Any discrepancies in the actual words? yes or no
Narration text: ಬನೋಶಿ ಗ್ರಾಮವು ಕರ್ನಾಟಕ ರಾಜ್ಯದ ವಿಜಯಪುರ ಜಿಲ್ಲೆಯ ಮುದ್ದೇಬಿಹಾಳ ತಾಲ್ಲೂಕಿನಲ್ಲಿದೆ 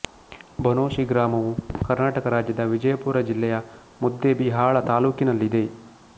no